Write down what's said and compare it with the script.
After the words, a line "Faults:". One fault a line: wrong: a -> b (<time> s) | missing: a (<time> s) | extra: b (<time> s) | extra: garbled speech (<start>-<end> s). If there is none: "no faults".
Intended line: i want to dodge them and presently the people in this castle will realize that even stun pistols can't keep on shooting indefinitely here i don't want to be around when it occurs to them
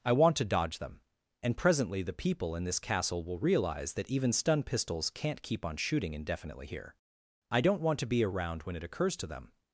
i want to dodge them and presently the people in this castle will realize that even stun pistols can't keep on shooting indefinitely here i don't want to be around when it occurs to them
Faults:
no faults